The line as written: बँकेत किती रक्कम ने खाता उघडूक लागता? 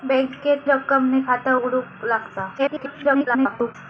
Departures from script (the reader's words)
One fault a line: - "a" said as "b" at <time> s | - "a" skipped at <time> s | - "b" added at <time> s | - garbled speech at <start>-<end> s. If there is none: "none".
- "किती" skipped at 0.6 s
- garbled speech at 2.6-3.7 s